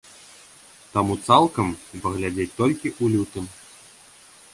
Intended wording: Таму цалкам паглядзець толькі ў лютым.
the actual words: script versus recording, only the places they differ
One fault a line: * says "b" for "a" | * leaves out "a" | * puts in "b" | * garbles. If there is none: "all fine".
all fine